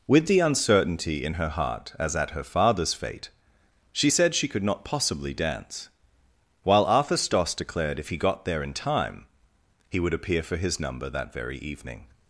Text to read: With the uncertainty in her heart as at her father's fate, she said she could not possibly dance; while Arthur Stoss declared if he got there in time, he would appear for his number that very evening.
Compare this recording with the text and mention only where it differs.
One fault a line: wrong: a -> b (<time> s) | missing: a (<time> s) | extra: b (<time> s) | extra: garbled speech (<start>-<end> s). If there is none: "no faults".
no faults